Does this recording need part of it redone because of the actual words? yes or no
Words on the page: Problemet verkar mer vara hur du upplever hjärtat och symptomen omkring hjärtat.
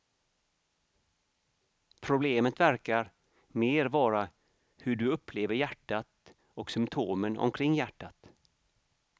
no